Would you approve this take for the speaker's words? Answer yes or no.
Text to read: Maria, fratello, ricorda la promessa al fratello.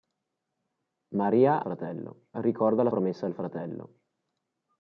yes